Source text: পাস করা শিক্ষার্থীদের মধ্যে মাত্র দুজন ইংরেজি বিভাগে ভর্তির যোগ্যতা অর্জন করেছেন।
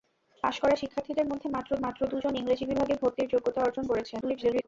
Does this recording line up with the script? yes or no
no